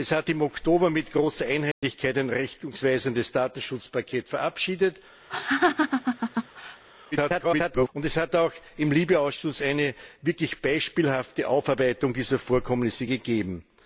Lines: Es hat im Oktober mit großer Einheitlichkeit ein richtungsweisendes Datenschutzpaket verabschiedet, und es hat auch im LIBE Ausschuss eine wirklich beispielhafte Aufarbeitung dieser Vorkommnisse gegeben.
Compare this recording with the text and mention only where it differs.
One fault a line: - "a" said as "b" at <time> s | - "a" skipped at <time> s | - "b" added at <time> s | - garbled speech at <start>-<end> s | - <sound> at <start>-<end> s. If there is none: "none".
- dropout at 1.7-1.8 s
- laugh at 5.3-6.8 s
- garbled speech at 7.1-7.9 s